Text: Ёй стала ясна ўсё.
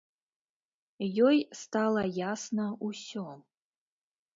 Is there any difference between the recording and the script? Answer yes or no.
no